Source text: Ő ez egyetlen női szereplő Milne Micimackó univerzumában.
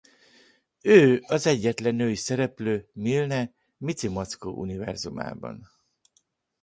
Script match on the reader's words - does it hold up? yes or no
no